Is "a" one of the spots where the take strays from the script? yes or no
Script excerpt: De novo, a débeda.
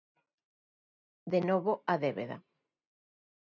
no